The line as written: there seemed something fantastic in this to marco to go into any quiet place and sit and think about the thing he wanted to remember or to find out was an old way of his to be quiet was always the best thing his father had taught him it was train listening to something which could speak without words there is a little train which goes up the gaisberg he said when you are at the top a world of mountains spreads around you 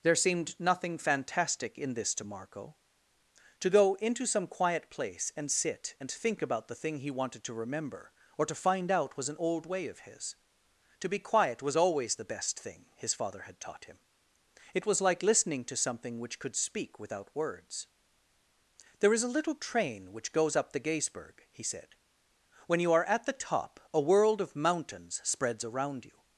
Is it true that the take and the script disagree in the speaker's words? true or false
true